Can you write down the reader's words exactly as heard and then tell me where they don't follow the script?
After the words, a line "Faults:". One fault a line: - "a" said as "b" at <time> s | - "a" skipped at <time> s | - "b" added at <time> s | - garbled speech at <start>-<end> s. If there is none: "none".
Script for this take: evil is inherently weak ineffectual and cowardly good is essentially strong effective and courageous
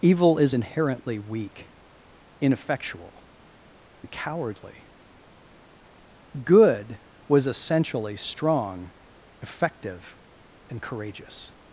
evil is inherently weak ineffectual and cowardly good was essentially strong effective and courageous
Faults:
- "is" said as "was" at 7.3 s